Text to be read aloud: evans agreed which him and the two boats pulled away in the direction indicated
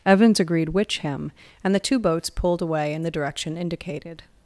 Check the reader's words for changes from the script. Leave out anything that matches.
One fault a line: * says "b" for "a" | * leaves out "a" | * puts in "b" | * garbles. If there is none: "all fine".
all fine